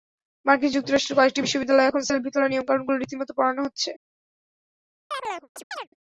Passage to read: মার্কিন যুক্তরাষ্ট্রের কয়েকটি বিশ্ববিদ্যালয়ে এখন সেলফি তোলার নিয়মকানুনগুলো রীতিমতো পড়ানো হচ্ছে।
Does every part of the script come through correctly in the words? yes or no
yes